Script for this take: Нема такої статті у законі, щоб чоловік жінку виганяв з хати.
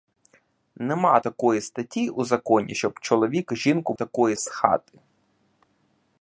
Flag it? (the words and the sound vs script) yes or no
yes